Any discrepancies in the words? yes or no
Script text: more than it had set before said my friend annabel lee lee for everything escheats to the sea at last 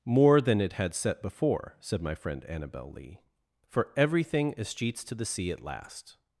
yes